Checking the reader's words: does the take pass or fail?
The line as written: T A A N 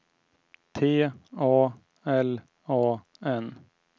fail